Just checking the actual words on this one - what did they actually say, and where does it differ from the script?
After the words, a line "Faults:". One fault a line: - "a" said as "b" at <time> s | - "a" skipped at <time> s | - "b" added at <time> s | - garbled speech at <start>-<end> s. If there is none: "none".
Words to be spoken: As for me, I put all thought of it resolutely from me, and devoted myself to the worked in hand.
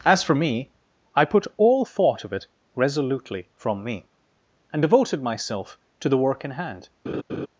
As for me, I put all thought of it resolutely from me, and devoted myself to the work in hand.
Faults:
- "worked" said as "work" at 6.2 s